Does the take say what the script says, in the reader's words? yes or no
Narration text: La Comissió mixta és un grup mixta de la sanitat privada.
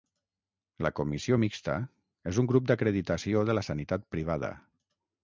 no